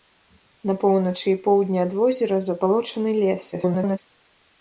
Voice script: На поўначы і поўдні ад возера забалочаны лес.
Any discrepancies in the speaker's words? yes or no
yes